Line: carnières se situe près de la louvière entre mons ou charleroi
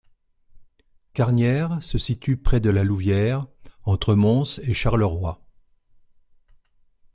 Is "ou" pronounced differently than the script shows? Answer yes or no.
yes